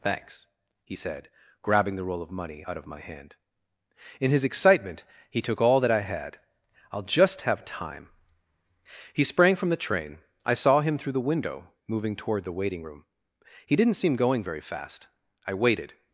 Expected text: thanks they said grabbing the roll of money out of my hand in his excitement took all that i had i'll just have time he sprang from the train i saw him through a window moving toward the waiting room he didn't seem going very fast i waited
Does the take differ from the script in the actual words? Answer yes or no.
yes